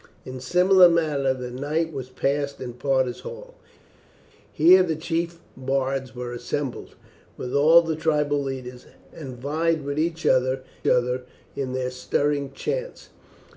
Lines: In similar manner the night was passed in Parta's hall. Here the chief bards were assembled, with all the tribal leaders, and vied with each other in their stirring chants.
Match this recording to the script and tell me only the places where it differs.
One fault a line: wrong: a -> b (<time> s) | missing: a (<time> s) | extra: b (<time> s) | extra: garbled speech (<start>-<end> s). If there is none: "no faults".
extra: other (10.9 s)